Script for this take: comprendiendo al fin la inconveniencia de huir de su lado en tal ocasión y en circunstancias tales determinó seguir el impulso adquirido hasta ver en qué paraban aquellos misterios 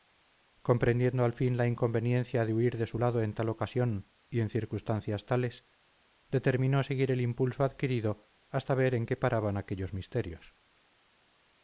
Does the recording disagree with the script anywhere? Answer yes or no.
no